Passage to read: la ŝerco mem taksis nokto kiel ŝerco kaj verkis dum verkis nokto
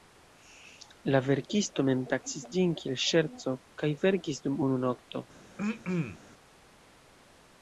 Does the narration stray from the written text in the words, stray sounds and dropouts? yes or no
yes